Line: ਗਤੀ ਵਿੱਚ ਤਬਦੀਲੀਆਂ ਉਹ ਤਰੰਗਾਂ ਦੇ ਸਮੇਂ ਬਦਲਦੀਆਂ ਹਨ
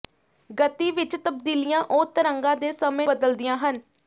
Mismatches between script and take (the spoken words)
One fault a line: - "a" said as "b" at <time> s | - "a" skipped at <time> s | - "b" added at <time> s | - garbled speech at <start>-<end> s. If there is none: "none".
none